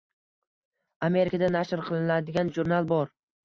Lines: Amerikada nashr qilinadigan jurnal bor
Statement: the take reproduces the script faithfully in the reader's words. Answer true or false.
true